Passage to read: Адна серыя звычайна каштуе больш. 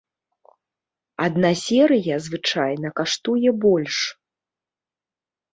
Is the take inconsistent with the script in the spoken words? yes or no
no